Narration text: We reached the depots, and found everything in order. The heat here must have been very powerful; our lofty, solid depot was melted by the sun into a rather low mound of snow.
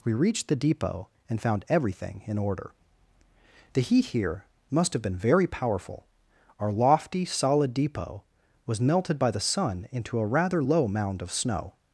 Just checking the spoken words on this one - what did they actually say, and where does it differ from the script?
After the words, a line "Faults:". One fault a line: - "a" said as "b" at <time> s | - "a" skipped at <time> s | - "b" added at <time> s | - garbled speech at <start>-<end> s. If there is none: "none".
We reached the depot, and found everything in order. The heat here must have been very powerful; our lofty, solid depot was melted by the sun into a rather low mound of snow.
Faults:
- "depots" said as "depot" at 0.6 s